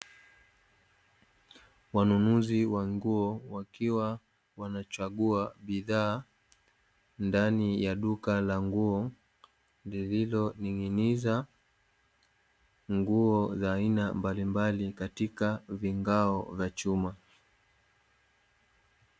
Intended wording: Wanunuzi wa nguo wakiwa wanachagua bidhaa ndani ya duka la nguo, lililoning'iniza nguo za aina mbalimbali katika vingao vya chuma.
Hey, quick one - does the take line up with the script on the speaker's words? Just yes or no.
yes